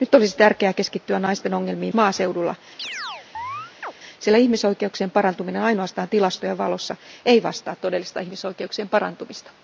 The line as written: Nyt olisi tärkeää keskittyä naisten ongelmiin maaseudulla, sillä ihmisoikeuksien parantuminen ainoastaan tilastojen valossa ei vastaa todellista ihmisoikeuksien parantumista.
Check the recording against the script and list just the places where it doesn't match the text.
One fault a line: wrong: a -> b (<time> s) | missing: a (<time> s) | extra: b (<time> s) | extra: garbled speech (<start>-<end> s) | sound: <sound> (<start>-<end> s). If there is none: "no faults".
sound: chirp (2.8-3.9 s)